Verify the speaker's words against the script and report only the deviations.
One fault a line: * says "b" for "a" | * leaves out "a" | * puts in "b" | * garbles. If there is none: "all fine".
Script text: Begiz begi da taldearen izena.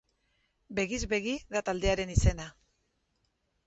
all fine